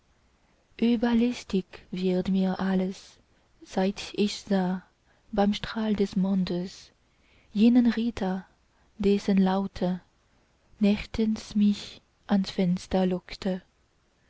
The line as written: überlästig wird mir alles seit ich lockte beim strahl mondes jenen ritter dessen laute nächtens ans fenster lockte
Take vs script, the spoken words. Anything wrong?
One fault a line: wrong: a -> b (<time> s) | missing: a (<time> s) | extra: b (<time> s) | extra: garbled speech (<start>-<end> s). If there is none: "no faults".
wrong: lockte -> sah (4.4 s)
extra: des (6.0 s)
extra: mich (11.6 s)